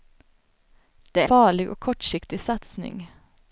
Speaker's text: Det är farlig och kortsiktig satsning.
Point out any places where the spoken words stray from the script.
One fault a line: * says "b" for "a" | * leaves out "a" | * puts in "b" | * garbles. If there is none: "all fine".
all fine